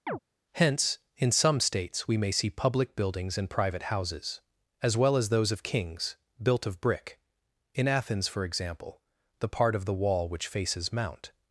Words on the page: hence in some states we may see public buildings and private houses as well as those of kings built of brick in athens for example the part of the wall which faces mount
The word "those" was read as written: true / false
true